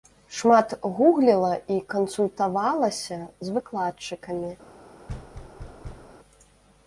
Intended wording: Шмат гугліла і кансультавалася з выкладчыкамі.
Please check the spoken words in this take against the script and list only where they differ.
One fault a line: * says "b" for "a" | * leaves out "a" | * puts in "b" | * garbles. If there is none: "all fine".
all fine